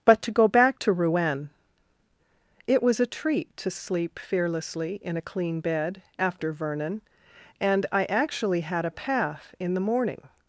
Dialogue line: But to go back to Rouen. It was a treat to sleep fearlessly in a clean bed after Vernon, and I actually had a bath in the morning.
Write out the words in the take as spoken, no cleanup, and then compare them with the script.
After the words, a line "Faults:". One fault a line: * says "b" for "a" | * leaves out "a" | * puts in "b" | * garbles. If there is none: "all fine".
But to go back to Rouen. It was a treat to sleep fearlessly in a clean bed after Vernon, and I actually had a path in the morning.
Faults:
* says "path" for "bath"